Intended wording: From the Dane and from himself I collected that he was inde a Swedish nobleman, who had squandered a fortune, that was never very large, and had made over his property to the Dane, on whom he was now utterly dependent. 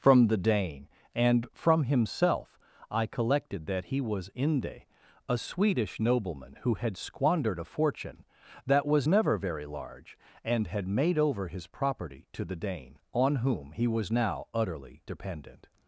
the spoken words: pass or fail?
pass